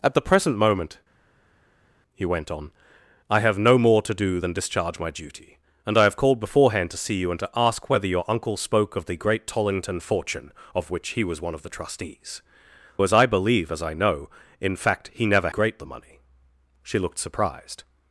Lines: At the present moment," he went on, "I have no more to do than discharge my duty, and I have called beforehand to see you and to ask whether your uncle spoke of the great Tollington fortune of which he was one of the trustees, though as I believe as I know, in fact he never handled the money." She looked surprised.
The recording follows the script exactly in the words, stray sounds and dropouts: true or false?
false